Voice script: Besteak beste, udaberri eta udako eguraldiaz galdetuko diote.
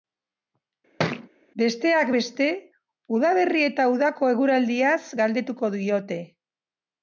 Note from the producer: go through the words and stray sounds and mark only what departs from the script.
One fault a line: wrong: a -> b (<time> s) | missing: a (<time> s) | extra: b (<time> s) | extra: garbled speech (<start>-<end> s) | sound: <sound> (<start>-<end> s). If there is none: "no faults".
sound: thud (1.0-1.3 s)